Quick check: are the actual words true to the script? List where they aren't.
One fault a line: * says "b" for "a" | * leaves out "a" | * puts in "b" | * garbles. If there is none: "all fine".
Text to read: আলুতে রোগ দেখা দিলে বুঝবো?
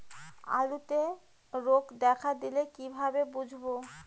* puts in "কিভাবে"